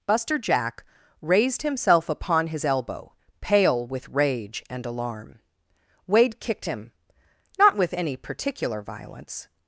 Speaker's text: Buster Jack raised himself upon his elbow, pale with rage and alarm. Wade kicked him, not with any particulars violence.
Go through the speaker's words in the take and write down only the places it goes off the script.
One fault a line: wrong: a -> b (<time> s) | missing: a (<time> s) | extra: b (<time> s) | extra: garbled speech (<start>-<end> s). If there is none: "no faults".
wrong: particulars -> particular (8.2 s)